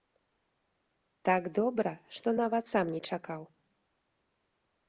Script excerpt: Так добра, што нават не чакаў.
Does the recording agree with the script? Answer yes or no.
no